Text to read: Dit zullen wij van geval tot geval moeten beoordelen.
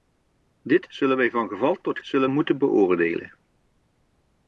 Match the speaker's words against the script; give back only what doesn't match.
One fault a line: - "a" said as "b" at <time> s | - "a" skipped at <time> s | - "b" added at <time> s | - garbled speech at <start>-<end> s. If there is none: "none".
- "geval" said as "zullen" at 2.0 s